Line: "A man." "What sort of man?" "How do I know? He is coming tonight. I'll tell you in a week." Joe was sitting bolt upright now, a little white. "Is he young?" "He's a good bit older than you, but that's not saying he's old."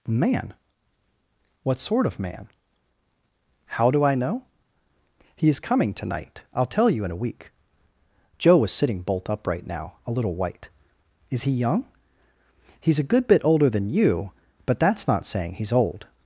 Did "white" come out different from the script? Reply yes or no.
no